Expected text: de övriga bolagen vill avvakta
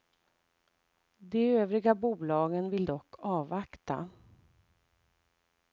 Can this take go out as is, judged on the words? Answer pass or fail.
fail